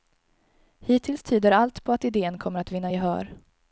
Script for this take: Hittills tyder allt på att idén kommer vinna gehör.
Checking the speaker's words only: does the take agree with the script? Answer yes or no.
no